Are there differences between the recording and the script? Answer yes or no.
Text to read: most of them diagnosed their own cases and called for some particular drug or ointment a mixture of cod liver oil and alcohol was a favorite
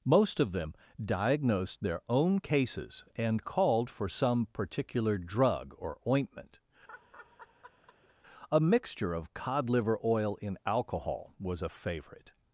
yes